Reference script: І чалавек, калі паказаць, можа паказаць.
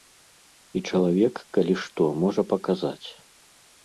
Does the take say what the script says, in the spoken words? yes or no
no